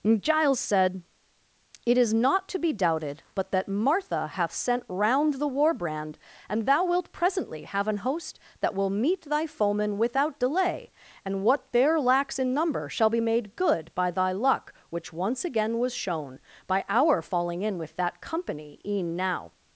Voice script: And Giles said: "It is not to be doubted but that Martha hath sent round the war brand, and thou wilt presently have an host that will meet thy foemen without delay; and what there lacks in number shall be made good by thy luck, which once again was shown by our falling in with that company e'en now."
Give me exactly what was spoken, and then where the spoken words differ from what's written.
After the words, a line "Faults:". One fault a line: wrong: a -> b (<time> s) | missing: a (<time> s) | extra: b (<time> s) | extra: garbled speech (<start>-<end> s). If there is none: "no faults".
Giles said: "It is not to be doubted but that Martha hath sent round the war brand, and thou wilt presently have an host that will meet thy foemen without delay; and what there lacks in number shall be made good by thy luck, which once again was shown by our falling in with that company e'en now."
Faults:
missing: And (0.2 s)